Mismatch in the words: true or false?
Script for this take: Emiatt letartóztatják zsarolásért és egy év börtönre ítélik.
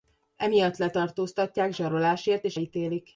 true